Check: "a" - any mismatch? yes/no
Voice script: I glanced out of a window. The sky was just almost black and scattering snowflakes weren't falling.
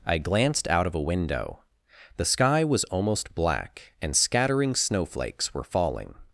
no